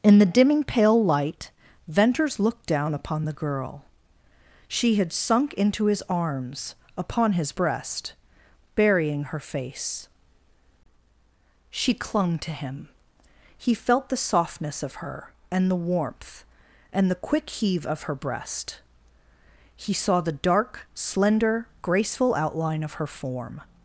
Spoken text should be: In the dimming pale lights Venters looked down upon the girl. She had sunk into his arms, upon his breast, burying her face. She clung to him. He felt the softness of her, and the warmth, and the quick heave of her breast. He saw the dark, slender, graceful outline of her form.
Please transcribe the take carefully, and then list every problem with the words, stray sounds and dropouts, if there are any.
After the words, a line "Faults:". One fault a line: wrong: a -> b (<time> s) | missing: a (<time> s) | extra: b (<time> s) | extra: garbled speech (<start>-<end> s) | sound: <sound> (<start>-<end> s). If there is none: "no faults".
In the dimming pale light Venters looked down upon the girl. She had sunk into his arms, upon his breast, burying her face. She clung to him. He felt the softness of her, and the warmth, and the quick heave of her breast. He saw the dark, slender, graceful outline of her form.
Faults:
wrong: lights -> light (1.0 s)